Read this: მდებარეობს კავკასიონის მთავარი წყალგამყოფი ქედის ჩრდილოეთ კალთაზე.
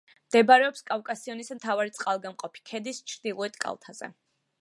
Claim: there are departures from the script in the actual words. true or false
false